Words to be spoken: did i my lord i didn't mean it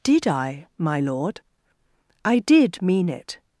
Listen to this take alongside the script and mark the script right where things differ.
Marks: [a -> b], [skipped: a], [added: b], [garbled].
did i my lord i [didn't -> did] mean it